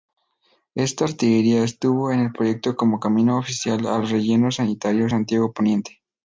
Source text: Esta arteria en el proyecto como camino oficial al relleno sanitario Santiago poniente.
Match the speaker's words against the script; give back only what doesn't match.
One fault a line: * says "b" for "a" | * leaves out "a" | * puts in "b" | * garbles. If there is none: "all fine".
* puts in "estuvo"